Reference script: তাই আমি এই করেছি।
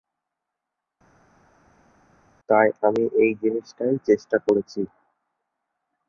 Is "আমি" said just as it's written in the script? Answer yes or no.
yes